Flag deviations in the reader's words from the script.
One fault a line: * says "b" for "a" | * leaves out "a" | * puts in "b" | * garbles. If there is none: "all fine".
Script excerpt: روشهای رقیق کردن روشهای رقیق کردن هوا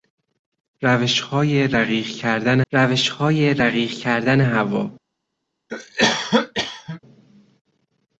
all fine